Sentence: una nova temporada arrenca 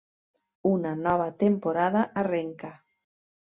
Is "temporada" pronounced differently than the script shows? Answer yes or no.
no